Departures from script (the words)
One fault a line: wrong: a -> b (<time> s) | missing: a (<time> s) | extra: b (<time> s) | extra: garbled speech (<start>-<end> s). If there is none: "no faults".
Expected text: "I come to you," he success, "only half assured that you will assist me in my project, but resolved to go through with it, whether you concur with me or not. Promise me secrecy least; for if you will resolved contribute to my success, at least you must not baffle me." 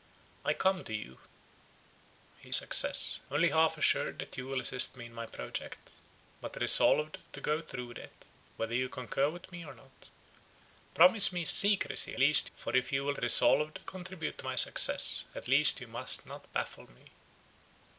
no faults